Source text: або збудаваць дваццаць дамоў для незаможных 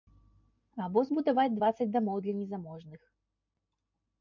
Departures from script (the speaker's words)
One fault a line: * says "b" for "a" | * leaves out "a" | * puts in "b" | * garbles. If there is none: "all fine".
all fine